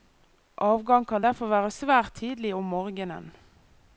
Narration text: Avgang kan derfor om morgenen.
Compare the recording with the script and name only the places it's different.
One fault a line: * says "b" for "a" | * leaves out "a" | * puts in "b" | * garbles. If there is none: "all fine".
* puts in "være svært tidlig"